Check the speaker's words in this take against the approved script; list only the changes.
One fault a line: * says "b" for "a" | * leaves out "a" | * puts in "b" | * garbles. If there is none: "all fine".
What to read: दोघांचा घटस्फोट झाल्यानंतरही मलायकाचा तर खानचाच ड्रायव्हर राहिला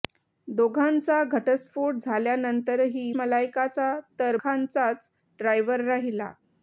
all fine